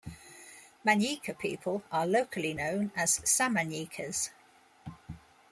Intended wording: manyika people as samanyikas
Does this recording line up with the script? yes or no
no